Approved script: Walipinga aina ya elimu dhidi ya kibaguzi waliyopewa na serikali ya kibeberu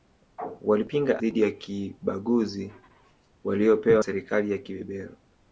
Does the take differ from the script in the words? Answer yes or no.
yes